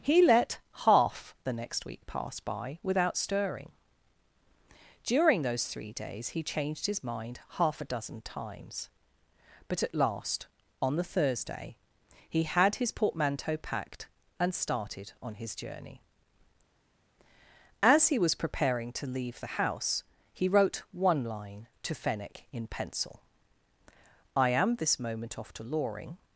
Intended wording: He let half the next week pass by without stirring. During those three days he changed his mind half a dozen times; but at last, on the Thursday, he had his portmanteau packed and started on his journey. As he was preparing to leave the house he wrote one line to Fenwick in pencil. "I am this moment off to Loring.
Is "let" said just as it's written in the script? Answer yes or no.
yes